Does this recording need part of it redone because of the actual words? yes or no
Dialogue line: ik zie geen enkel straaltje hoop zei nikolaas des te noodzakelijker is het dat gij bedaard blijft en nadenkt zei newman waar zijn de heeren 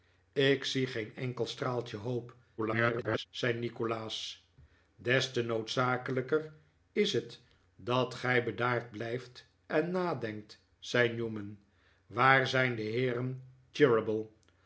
yes